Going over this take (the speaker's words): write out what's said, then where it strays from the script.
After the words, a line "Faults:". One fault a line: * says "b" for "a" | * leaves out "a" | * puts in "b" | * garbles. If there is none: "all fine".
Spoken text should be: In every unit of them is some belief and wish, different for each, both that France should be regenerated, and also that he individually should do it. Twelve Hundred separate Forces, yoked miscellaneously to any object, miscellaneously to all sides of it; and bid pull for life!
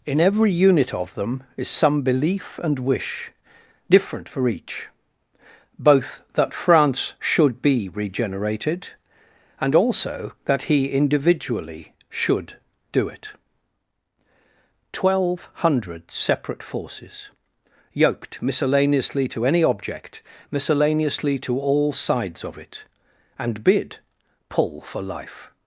In every unit of them is some belief and wish, different for each, both that France should be regenerated, and also that he individually should do it. Twelve Hundred separate Forces, yoked miscellaneously to any object, miscellaneously to all sides of it; and bid pull for life!
Faults:
all fine